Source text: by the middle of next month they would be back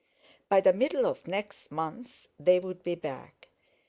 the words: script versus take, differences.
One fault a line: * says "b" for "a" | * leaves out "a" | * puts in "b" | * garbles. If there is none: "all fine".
all fine